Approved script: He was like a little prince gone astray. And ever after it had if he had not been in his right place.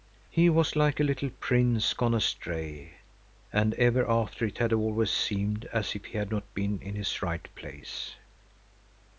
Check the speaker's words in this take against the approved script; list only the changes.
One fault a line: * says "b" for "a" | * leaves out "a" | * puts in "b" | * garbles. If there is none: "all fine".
* puts in "always seemed as"